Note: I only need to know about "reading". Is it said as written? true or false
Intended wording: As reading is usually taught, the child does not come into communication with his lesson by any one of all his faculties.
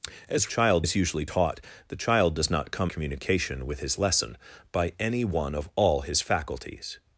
false